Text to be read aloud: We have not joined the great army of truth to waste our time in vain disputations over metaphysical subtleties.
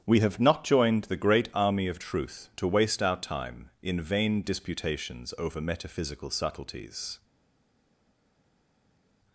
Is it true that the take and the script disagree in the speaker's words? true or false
false